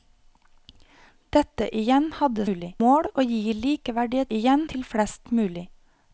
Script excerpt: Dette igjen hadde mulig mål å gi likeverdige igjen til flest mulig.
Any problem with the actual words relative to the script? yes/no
no